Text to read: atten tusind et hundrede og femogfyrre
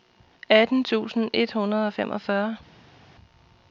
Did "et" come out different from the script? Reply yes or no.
no